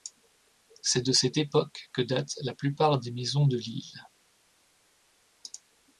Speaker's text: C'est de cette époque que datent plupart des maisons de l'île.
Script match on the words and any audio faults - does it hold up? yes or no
no